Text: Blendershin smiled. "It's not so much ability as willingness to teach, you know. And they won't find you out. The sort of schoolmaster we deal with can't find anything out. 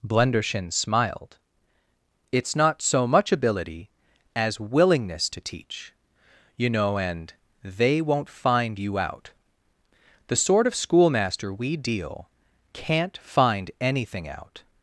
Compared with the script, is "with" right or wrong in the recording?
wrong